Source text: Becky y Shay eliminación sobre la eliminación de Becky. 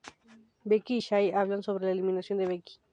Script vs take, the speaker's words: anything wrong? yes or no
yes